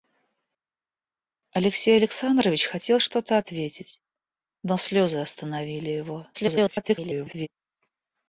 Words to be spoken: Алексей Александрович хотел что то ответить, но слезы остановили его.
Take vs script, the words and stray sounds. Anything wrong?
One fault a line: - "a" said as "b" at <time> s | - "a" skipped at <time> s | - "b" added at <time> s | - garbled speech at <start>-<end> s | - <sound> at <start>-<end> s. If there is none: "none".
- garbled speech at 6.3-7.5 s